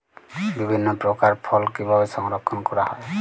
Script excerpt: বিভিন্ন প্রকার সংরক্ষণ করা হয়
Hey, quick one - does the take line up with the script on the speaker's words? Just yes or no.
no